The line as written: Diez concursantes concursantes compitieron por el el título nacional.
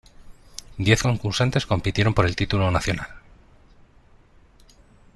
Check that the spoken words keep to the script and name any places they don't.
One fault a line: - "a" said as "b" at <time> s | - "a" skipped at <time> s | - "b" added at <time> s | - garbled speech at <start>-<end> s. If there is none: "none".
- "concursantes" skipped at 1.6 s
- "el" skipped at 2.4 s